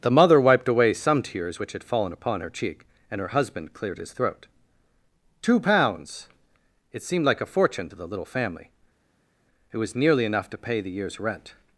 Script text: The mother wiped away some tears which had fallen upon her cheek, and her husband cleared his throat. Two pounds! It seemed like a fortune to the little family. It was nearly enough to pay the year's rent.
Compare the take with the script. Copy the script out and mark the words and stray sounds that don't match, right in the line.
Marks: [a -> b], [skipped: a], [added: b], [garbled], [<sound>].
The mother wiped away some tears which had fallen upon her cheek, and her husband cleared his throat. Two pounds! It seemed like a fortune to the little family. It was nearly enough to pay the year's rent.